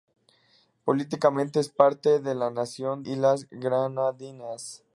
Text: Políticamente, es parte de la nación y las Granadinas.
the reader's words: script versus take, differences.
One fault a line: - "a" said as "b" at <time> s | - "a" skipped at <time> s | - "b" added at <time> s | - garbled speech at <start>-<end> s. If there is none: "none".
none